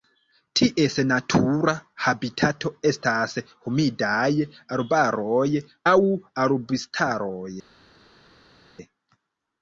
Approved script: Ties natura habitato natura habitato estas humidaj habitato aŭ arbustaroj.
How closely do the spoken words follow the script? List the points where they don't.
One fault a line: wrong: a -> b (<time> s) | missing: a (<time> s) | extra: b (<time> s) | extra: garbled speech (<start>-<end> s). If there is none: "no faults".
missing: natura habitato (2.7 s)
wrong: habitato -> arbaroj (4.8 s)